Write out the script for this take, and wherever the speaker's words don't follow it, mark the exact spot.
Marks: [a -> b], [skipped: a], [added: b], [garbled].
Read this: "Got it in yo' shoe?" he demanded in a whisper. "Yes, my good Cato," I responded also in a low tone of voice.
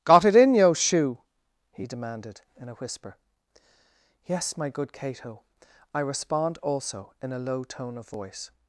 "Got it in yo' shoe?" he demanded in a whisper. "Yes, my good Cato," I [responded -> respond] also in a low tone of voice.